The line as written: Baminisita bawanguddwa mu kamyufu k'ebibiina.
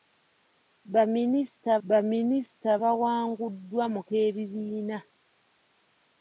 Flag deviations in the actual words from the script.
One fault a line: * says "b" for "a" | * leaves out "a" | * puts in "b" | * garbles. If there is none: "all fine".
* puts in "baminisita"
* leaves out "kamyufu"